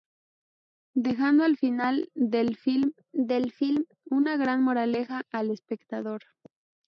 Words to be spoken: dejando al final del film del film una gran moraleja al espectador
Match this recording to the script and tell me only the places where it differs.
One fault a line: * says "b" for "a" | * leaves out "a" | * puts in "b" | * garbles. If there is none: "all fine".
all fine